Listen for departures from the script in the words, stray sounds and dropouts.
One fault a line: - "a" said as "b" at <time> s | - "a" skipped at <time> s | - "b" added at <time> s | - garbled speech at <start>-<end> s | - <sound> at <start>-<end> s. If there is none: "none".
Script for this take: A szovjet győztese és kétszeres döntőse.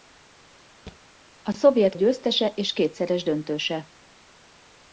- thud at 0.9-1.0 s